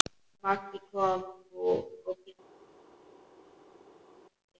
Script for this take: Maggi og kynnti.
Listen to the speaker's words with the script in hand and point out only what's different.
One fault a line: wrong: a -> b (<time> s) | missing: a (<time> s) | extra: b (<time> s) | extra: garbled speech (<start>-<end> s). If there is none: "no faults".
extra: kom nú (0.9 s)